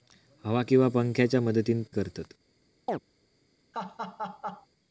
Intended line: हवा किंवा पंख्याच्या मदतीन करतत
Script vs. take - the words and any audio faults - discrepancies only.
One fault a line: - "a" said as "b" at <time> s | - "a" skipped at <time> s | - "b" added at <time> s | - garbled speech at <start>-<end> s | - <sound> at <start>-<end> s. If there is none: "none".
- chirp at 2.9-3.0 s
- laugh at 3.7-4.7 s